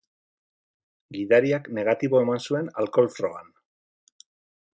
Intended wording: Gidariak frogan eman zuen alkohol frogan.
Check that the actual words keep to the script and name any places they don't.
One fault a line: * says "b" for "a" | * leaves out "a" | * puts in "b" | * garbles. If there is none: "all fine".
* says "negatibo" for "frogan"